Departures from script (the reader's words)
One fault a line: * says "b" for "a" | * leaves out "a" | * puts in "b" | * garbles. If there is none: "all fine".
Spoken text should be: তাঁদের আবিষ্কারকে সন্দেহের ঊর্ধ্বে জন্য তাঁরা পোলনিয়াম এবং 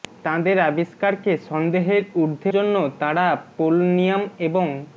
all fine